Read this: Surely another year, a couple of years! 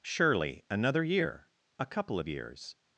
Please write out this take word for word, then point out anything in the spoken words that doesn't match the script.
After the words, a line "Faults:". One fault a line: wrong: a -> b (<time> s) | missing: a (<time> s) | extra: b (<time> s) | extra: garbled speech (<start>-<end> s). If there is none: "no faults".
Surely another year, a couple of years!
Faults:
no faults